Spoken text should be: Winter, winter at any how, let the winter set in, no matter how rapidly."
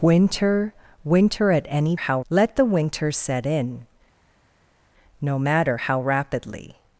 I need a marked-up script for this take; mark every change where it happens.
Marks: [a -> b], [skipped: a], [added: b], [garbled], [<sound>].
Winter, winter at any how, let the winter set in, no matter how rapidly."